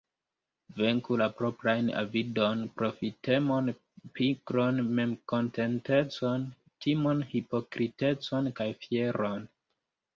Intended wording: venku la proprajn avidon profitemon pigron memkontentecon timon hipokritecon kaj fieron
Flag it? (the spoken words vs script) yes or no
no